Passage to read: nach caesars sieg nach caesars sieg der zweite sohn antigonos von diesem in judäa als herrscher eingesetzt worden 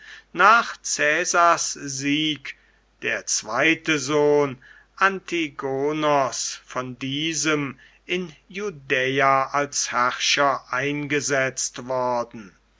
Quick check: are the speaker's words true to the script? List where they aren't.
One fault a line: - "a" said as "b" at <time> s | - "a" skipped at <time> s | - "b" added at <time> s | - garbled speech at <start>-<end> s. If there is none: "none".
- "nach caesars sieg" skipped at 2.5 s